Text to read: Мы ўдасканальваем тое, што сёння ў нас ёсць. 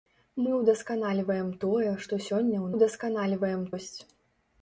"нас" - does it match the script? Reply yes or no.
no